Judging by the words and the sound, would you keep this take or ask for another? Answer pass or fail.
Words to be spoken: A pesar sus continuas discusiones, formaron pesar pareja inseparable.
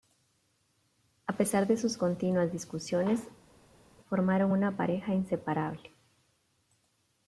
fail